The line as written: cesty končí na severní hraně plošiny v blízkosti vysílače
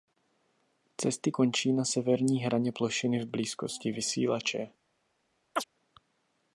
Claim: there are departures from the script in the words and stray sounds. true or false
true